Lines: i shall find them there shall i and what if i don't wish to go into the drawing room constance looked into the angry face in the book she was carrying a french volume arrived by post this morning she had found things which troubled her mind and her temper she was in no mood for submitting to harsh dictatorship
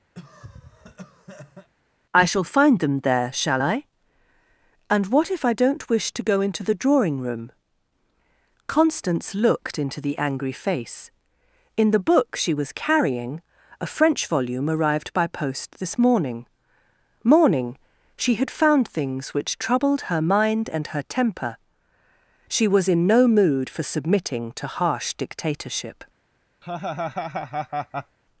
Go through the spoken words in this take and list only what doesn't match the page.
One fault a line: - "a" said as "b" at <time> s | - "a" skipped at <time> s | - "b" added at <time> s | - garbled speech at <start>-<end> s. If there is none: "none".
- "morning" added at 17.2 s